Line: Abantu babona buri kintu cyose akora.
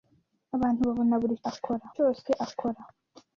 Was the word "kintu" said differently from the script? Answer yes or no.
yes